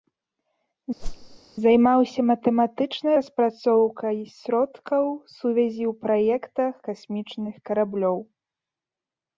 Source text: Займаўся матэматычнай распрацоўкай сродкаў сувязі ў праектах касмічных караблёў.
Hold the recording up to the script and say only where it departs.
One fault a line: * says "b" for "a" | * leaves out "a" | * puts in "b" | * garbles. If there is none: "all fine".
all fine